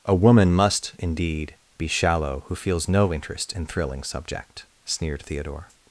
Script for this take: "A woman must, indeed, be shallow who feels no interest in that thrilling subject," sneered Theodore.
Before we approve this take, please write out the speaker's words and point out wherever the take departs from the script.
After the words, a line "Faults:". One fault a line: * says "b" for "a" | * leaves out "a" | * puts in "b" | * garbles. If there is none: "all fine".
"A woman must, indeed, be shallow who feels no interest in thrilling subject," sneered Theodore.
Faults:
* leaves out "that"